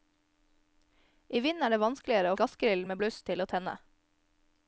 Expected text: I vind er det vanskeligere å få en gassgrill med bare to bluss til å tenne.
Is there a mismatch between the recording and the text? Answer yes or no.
yes